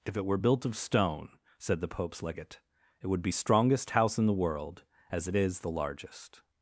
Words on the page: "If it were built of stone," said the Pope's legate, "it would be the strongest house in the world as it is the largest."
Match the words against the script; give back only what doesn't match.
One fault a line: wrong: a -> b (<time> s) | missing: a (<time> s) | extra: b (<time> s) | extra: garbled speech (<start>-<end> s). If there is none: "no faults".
missing: the (3.3 s)